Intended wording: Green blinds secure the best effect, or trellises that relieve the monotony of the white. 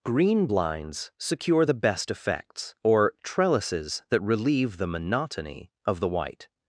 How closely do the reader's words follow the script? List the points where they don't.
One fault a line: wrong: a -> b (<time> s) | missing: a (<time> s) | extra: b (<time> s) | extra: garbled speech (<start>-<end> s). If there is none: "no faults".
wrong: effect -> effects (2.1 s)